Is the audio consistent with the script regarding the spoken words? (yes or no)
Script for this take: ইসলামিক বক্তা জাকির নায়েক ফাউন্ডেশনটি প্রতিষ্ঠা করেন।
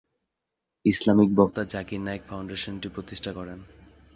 yes